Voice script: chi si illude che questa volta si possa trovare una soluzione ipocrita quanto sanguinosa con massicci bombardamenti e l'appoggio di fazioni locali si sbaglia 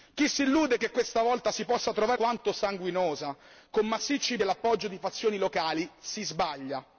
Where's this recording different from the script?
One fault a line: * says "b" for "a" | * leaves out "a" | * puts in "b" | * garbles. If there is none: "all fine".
* leaves out "una soluzione ipocrita"
* leaves out "bombardamenti"